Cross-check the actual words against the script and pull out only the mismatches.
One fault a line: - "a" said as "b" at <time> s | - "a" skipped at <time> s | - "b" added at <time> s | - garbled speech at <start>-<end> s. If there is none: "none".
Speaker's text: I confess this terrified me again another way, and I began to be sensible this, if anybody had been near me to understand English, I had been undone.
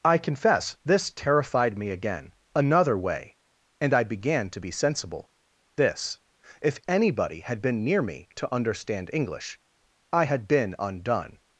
none